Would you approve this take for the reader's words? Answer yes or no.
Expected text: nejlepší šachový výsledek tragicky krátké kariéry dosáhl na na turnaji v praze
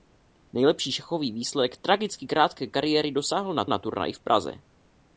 yes